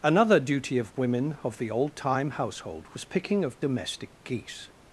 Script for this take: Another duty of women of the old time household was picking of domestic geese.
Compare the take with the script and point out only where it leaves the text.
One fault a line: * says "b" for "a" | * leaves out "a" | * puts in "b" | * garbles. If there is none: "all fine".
all fine